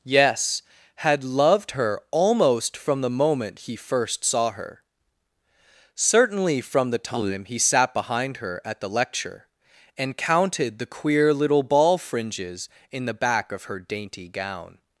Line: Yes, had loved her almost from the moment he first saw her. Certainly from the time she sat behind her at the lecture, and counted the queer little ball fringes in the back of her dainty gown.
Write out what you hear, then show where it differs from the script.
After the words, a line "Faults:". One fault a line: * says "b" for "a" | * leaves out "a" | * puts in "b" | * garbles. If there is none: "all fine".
Yes, had loved her almost from the moment he first saw her. Certainly from the time he sat behind her at the lecture, and counted the queer little ball fringes in the back of her dainty gown.
Faults:
* says "he" for "she"